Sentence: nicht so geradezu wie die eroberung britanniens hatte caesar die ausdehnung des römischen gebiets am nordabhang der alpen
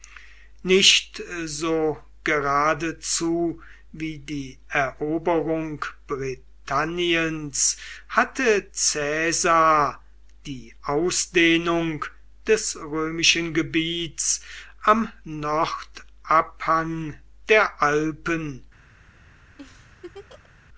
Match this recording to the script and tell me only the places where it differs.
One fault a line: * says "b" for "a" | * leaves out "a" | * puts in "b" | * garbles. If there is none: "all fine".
all fine